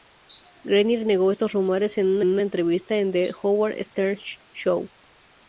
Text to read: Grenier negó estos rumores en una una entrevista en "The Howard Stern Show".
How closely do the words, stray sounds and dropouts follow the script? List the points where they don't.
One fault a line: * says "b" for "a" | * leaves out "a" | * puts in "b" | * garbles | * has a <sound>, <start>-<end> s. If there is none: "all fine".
all fine